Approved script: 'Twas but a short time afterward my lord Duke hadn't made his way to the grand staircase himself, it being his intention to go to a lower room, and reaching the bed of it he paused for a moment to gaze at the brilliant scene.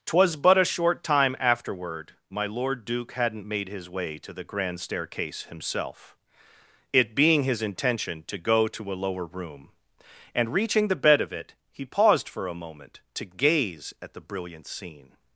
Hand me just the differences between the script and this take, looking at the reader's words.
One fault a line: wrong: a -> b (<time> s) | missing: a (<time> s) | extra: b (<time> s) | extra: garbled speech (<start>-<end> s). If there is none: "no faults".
no faults